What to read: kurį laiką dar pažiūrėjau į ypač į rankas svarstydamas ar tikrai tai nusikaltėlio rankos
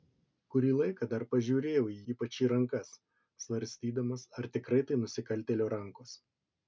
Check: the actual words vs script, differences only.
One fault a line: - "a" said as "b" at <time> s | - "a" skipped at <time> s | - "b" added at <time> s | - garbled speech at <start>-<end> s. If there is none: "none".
none